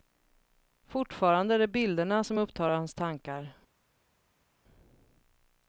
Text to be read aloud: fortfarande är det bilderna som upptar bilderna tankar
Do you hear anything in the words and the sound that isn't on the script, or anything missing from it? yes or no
yes